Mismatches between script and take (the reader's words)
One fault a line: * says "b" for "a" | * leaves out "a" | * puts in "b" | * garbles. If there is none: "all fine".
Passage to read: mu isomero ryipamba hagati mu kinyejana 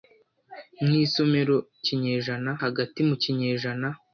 * says "kinyejana" for "ryipamba"